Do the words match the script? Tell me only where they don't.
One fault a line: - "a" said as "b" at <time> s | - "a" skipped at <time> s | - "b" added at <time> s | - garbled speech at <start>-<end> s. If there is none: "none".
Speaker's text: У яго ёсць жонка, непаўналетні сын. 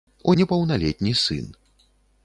- "яго ёсць жонка" skipped at 0.3 s